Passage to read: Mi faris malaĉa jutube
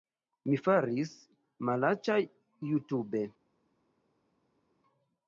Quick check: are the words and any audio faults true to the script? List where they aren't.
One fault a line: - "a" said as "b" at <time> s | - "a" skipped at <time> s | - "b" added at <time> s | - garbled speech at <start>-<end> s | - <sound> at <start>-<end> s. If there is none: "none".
none